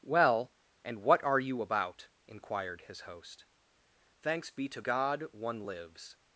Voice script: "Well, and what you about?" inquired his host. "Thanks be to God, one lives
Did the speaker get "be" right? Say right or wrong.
right